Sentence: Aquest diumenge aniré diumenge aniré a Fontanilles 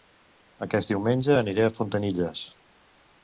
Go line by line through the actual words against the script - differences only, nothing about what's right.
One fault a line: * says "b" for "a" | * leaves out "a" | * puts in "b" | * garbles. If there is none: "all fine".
* leaves out "diumenge aniré"